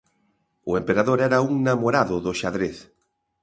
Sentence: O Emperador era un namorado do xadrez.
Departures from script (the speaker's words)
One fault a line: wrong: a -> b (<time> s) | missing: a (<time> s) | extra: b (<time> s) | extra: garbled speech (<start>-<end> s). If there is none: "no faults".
no faults